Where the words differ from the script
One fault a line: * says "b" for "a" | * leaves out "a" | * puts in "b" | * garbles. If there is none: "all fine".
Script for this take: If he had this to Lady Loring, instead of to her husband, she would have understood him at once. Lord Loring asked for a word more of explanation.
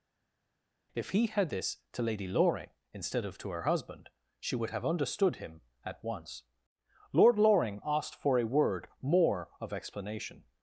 all fine